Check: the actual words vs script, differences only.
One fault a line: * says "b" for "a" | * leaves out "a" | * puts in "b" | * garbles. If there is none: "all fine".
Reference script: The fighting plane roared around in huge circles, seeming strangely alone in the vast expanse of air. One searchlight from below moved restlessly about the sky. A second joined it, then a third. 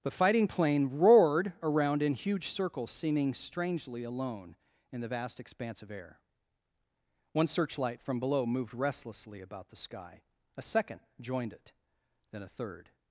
all fine